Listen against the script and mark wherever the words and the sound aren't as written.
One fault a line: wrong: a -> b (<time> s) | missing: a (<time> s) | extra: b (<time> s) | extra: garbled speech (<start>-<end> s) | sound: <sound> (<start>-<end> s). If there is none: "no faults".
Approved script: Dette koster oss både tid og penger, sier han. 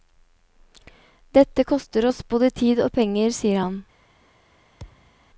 sound: thud (4.8-5.2 s)